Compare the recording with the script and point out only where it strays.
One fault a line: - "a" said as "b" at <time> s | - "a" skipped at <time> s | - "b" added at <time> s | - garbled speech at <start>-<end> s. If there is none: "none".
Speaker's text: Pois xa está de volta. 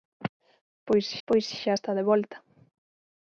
- "pois" added at 1.3 s